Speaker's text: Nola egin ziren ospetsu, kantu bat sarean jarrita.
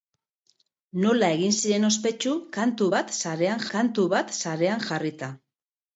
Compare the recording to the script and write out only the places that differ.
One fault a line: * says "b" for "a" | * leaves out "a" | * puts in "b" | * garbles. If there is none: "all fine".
* puts in "kantu bat sarean"